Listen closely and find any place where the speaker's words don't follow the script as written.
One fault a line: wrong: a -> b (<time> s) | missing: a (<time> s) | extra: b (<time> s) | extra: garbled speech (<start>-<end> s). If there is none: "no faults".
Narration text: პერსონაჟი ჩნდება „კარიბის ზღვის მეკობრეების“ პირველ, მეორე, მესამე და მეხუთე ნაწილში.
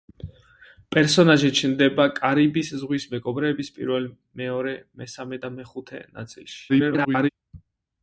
extra: garbled speech (6.7-7.3 s)